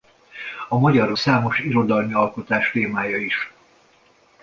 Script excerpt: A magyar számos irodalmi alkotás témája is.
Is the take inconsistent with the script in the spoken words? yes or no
no